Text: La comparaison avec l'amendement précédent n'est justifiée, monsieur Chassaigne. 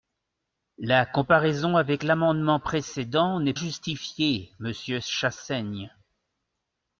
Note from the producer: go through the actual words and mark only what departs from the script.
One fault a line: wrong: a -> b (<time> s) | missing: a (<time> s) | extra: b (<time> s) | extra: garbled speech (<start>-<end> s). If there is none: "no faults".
no faults